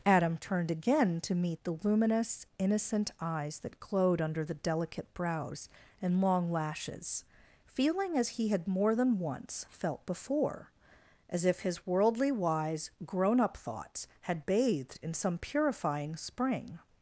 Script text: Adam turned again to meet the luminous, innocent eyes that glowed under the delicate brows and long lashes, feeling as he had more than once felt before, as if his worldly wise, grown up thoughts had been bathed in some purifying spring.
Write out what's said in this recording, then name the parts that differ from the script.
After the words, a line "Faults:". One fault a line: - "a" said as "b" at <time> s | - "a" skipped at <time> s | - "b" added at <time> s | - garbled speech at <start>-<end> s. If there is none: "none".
Adam turned again to meet the luminous, innocent eyes that glowed under the delicate brows and long lashes, feeling as he had more than once felt before, as if his worldly wise, grown up thoughts had bathed in some purifying spring.
Faults:
- "been" skipped at 14.4 s